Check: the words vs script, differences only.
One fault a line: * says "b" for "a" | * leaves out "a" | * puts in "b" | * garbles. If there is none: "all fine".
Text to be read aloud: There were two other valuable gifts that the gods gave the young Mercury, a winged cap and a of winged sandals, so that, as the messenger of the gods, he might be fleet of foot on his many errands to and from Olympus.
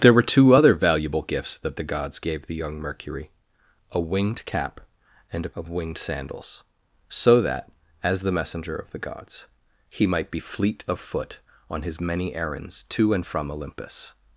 all fine